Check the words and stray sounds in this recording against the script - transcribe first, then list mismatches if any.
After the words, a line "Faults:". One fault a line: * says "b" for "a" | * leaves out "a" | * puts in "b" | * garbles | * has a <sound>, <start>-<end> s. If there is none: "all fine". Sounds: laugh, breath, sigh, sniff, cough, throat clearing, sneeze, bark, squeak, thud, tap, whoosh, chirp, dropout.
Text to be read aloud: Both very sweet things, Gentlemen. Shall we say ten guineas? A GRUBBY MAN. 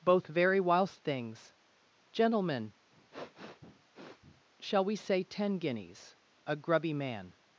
Both very whilst things, Gentlemen. Shall we say ten guineas? A GRUBBY MAN.
Faults:
* says "whilst" for "sweet"
* has a sniff, 2.9-4.4 s